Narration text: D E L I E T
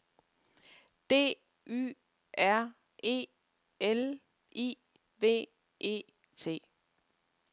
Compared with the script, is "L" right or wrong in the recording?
right